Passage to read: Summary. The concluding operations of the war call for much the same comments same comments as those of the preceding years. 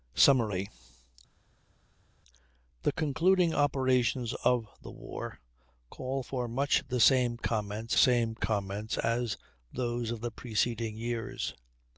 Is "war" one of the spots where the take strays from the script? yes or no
no